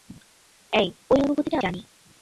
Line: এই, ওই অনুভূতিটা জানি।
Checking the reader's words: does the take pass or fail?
pass